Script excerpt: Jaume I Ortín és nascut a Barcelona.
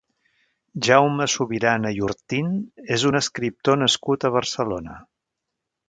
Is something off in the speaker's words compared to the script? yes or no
yes